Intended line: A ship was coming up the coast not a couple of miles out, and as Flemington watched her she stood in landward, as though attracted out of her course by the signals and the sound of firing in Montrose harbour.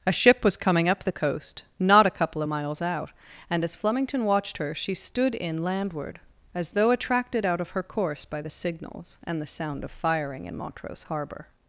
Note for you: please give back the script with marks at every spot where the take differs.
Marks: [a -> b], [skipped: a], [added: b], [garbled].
A ship was coming up the coast not a couple of miles out, and as Flemington watched her she stood in landward, as though attracted out of her course by the signals and the sound of firing in Montrose harbour.